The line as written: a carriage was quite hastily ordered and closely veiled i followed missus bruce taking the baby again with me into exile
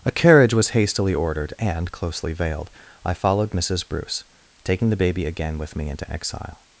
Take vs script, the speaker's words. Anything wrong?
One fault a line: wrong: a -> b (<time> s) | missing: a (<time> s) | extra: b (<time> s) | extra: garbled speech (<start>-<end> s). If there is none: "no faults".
missing: quite (0.7 s)